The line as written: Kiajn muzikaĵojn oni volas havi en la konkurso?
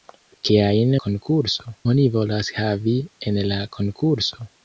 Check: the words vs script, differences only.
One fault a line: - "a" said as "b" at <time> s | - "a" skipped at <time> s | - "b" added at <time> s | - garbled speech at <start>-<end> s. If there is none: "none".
- "muzikaĵojn" said as "konkurso" at 1.1 s